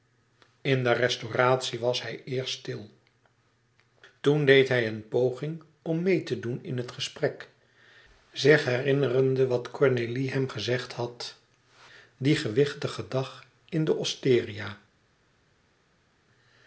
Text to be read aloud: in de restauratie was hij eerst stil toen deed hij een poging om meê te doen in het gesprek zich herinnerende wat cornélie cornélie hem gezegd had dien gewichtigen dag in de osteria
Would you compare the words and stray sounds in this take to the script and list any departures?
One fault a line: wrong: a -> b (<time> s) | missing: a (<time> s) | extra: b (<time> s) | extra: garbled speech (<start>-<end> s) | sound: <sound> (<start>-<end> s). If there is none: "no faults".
missing: cornélie (10.3 s)